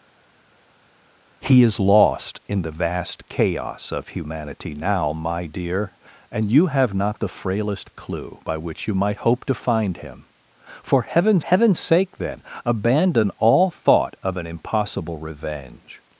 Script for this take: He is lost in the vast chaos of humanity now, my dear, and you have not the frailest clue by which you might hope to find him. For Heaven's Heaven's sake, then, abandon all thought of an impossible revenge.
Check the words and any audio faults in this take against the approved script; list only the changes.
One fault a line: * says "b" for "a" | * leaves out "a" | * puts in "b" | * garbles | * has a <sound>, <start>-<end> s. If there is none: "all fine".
all fine